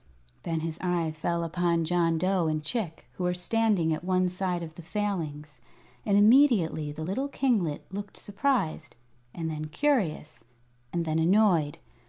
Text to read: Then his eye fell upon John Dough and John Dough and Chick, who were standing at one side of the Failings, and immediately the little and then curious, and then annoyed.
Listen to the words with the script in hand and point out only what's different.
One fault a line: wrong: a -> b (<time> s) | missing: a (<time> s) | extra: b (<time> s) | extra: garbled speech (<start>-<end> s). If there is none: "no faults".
missing: John Dough and (2.6 s)
extra: kinglet looked surprised (7.3 s)